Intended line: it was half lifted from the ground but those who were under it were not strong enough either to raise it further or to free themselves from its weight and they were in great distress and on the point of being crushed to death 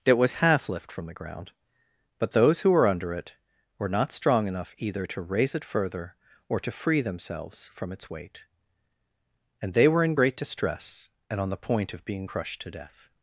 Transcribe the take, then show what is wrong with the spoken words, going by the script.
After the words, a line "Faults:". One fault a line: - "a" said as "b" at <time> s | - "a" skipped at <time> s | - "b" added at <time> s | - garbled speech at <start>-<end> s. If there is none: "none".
it was half lift from the ground but those who were under it were not strong enough either to raise it further or to free themselves from its weight and they were in great distress and on the point of being crushed to death
Faults:
- "lifted" said as "lift" at 0.7 s